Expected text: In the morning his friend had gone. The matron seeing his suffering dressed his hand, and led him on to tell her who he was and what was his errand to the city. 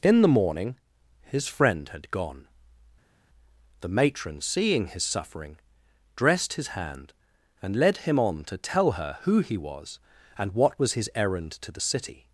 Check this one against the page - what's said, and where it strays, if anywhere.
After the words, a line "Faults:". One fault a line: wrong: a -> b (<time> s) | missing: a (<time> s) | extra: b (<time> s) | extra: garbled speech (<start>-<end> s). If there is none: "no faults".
In the morning his friend had gone. The matron seeing his suffering dressed his hand, and led him on to tell her who he was and what was his errand to the city.
Faults:
no faults